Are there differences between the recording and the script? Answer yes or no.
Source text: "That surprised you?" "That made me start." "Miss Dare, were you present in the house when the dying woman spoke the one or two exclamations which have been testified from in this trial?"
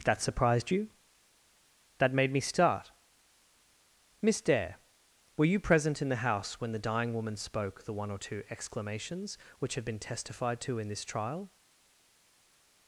yes